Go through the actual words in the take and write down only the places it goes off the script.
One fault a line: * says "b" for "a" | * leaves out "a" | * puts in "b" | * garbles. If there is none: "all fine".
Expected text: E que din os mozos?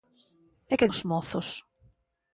* leaves out "din"